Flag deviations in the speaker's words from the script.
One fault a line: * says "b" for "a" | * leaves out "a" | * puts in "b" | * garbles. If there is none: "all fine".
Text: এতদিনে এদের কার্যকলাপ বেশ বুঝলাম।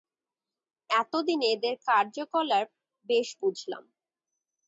all fine